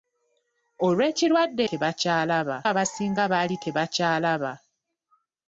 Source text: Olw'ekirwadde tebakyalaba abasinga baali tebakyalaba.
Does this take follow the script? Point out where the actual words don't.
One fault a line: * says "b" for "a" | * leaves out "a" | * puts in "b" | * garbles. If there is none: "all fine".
all fine